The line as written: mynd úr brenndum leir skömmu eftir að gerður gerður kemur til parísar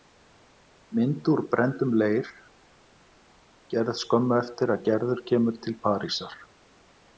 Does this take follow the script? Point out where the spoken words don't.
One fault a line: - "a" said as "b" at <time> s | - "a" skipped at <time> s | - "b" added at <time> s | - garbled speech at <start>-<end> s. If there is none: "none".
- "gerð" added at 3.7 s
- "gerður" skipped at 5.3 s